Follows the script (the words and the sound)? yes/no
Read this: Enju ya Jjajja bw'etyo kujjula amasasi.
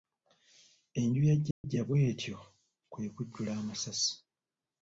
no